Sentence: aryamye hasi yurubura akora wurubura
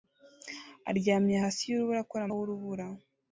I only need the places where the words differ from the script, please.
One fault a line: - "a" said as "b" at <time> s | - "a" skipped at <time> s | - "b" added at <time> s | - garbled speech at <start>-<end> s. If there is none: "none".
none